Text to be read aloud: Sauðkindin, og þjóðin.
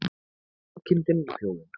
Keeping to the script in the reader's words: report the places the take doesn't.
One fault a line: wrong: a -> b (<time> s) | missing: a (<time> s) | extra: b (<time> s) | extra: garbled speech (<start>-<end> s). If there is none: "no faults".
no faults